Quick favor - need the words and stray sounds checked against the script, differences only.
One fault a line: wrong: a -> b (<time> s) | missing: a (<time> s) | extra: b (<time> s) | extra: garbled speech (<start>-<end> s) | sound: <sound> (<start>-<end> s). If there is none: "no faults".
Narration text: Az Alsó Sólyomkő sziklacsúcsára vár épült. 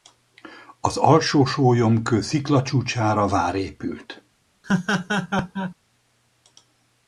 sound: laugh (4.6-5.7 s)